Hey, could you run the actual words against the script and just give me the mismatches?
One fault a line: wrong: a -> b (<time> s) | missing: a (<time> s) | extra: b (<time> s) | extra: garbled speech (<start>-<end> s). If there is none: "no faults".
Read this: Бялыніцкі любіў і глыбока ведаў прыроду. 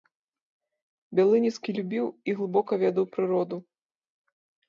no faults